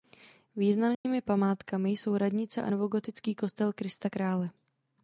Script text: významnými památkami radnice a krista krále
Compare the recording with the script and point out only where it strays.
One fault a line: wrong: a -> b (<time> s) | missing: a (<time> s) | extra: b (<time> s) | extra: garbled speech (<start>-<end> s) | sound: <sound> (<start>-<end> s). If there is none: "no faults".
sound: dropout (0.9-1.0 s)
extra: jsou (1.9 s)
extra: novogotický kostel (2.7 s)